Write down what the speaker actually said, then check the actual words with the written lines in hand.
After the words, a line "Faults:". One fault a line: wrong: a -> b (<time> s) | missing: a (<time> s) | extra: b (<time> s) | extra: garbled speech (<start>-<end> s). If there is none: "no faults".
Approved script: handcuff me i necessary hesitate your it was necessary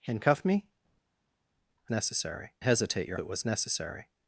handcuff me i necessary hesitate your it was necessary
Faults:
no faults